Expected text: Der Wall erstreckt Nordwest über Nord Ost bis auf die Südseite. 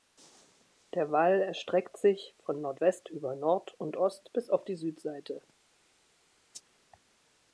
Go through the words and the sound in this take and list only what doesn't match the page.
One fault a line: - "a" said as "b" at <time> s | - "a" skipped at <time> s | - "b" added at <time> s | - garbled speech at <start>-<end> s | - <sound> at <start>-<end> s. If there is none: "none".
- "sich von" added at 1.9 s
- "und" added at 3.8 s